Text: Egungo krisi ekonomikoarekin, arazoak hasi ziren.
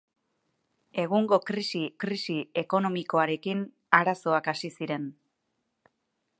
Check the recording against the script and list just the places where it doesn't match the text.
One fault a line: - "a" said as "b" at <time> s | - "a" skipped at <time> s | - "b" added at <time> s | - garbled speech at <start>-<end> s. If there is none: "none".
- "krisi" added at 2.0 s